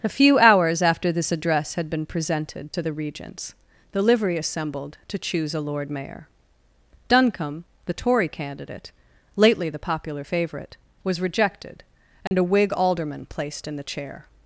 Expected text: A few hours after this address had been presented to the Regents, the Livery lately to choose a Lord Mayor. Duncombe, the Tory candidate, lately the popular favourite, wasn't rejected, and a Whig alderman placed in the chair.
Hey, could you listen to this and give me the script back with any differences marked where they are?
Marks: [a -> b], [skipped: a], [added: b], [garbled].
A few hours after this address had been presented to the Regents, the Livery [lately -> assembled] to choose a Lord Mayor. Duncombe, the Tory candidate, lately the popular favourite, [wasn't -> was] rejected, and a Whig alderman placed in the chair.